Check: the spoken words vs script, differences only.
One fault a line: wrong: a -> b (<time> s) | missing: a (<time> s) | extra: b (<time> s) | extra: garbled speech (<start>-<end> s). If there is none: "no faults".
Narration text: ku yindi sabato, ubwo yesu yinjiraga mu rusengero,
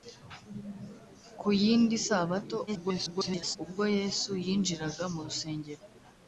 extra: garbled speech (2.7-3.6 s)